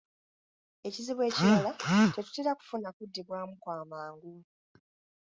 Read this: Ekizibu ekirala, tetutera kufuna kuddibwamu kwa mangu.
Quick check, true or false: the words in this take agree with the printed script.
true